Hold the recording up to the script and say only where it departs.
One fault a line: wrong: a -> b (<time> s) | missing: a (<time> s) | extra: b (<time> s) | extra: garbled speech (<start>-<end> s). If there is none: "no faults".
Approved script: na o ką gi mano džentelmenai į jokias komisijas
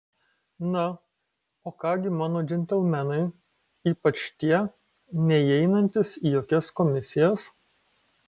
extra: ypač tie neįeinantys (3.9 s)